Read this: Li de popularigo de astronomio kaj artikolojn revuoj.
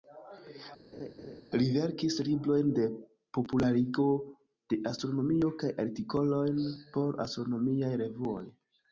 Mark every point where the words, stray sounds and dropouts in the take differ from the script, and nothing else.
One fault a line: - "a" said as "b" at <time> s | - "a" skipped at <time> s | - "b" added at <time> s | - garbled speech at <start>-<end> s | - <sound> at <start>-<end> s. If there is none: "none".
- laugh at 0.9-1.4 s
- "verkis librojn" added at 1.8 s
- "por astronomiaj" added at 7.0 s